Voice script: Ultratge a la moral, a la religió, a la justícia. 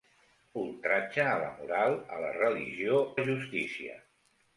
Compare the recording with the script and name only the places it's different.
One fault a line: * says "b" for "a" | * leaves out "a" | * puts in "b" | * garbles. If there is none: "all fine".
* leaves out "a"